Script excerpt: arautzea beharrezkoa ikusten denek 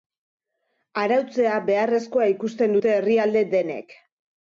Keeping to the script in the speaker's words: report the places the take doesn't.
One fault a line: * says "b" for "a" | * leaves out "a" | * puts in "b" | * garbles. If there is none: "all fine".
* puts in "dute herrialde"